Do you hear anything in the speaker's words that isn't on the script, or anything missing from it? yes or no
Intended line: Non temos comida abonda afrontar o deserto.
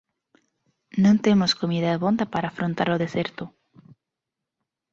yes